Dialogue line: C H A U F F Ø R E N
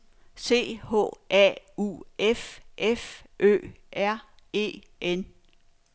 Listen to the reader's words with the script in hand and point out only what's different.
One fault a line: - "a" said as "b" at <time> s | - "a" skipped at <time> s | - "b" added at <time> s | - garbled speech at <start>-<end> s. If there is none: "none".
none